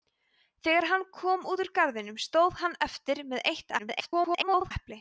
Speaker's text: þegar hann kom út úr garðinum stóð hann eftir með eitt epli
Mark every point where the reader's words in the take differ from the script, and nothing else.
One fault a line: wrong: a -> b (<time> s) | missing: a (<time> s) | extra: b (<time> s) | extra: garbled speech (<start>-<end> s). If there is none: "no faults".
extra: garbled speech (3.8-4.7 s)